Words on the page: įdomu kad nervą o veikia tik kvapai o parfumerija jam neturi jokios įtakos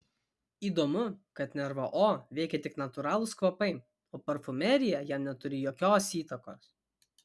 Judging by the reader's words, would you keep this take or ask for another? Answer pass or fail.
fail